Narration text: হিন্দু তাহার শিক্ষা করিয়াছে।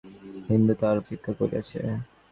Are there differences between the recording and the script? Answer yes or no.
no